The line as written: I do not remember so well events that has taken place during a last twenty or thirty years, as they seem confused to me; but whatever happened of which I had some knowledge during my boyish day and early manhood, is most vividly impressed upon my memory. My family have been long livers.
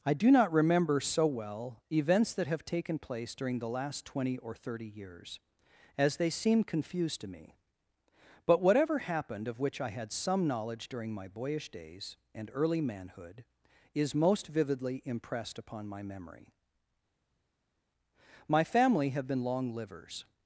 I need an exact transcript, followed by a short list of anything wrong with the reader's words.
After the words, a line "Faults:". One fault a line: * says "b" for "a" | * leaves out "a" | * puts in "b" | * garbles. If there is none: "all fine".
I do not remember so well events that have taken place during the last twenty or thirty years, as they seem confused to me; but whatever happened of which I had some knowledge during my boyish days and early manhood, is most vividly impressed upon my memory. My family have been long livers.
Faults:
* says "have" for "has"
* says "the" for "a"
* says "days" for "day"